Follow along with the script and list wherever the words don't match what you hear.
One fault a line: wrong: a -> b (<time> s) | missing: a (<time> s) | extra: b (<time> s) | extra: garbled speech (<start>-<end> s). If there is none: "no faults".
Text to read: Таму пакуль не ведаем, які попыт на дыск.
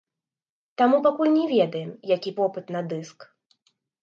no faults